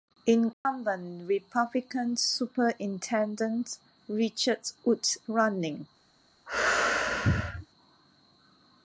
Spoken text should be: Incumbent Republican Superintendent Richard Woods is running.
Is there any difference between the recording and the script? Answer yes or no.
yes